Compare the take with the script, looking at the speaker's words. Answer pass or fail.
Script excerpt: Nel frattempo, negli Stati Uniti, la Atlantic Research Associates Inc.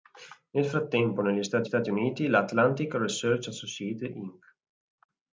fail